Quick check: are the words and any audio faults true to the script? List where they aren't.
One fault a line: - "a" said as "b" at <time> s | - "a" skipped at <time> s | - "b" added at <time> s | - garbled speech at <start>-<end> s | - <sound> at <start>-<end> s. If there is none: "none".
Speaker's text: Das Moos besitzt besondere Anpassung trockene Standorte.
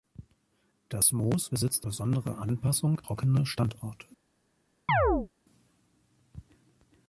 - chirp at 4.9-5.3 s